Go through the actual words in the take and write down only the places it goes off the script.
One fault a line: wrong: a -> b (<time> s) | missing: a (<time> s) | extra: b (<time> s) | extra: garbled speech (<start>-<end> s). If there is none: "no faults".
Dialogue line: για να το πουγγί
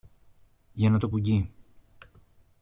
no faults